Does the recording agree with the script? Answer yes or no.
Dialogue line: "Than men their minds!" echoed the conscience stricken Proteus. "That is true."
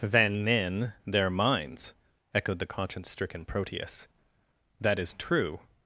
yes